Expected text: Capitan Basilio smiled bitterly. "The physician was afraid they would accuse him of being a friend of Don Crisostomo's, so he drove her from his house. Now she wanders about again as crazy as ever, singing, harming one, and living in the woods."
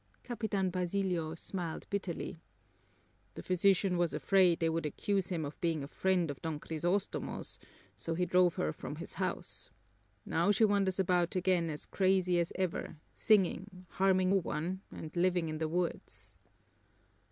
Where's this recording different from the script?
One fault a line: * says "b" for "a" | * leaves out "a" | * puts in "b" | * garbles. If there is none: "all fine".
all fine